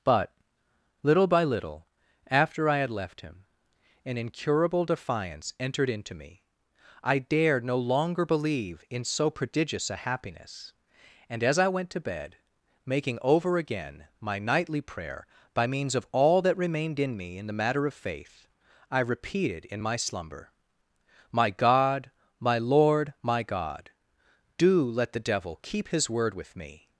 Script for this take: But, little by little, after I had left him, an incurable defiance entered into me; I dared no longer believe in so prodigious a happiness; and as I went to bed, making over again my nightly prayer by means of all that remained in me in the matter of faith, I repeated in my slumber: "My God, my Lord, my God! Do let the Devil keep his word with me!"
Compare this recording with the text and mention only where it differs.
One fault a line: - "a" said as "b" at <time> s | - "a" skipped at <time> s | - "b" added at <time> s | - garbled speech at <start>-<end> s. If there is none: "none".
none